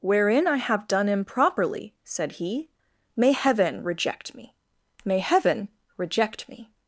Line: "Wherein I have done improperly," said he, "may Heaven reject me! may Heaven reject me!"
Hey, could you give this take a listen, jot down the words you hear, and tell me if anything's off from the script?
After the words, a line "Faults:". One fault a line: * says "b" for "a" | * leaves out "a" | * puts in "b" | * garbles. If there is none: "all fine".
"Wherein I have done improperly," said he, "may Heaven reject me! may Heaven reject me!"
Faults:
all fine